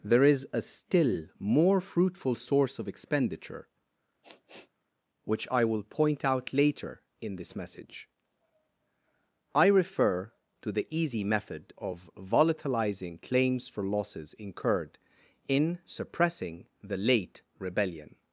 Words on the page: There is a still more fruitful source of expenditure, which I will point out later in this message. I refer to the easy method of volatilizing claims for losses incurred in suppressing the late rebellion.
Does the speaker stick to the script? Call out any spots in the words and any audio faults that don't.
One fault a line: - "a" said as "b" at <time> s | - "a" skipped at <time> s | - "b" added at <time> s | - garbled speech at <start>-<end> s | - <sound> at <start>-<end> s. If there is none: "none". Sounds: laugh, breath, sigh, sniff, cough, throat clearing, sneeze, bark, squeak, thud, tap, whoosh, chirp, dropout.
- sniff at 4.2-4.7 s